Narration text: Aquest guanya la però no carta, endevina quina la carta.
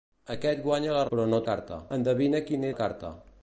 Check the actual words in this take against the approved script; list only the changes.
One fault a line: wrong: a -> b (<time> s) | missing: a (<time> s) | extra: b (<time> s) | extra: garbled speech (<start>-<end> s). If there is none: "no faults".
no faults